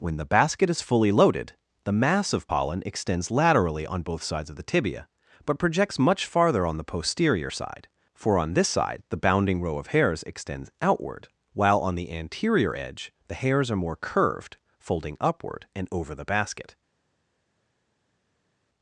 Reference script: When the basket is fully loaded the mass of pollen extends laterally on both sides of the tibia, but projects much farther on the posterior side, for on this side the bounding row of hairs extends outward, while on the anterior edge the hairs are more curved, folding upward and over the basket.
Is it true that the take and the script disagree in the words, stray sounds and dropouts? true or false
false